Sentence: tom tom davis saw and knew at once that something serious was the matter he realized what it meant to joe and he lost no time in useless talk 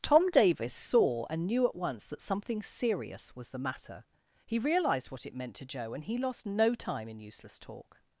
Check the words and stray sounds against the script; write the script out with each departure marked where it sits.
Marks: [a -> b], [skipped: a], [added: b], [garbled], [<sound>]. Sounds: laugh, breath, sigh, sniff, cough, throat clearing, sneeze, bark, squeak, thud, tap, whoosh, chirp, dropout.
tom [skipped: tom] davis saw and knew at once that something serious was the matter he realized what it meant to joe and he lost no time in useless talk